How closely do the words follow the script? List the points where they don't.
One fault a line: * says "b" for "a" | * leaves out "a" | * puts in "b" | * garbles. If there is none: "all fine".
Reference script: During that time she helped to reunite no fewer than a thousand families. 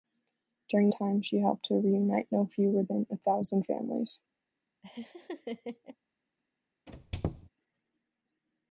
* leaves out "that"